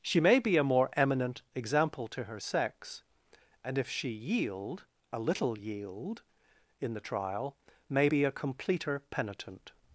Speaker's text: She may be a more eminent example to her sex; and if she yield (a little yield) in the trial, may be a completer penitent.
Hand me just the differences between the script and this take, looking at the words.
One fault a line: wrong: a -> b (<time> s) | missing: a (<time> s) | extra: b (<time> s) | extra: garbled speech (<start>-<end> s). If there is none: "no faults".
no faults